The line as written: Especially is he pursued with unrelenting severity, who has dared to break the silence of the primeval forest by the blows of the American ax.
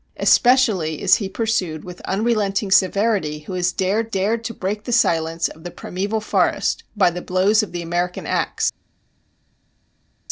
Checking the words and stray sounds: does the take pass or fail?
fail